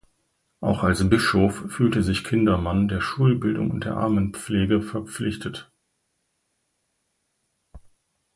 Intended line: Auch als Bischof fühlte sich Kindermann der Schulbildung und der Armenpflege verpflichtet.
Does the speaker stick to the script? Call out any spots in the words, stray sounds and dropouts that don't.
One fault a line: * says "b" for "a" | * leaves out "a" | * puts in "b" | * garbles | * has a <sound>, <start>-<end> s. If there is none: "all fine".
all fine